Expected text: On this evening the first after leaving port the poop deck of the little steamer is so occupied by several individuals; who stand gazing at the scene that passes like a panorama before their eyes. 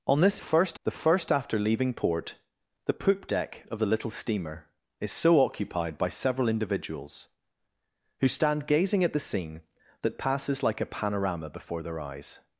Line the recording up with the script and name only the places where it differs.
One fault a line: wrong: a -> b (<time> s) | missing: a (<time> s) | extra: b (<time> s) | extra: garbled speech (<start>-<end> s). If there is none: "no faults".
wrong: evening -> first (0.4 s)